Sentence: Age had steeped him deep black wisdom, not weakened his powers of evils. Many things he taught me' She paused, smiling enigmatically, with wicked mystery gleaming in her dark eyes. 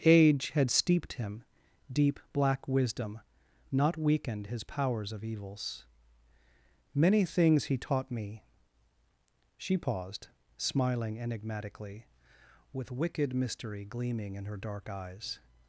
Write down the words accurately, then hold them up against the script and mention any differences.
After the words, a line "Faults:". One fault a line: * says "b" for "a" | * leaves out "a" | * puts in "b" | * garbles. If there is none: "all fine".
Age had steeped him deep black wisdom, not weakened his powers of evils. Many things he taught me' She paused, smiling enigmatically, with wicked mystery gleaming in her dark eyes.
Faults:
all fine